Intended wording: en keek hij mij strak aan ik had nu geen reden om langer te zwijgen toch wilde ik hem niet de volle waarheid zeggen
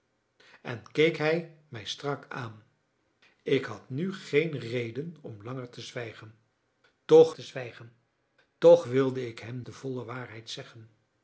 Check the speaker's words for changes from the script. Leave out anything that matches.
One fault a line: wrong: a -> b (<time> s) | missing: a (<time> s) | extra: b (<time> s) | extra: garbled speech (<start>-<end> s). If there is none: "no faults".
extra: te zwijgen toch (7.3 s)
missing: niet (9.6 s)